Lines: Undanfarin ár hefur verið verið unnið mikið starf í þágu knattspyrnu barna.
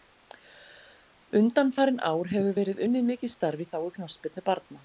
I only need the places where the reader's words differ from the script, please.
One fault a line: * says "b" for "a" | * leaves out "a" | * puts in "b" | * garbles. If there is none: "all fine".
* leaves out "verið"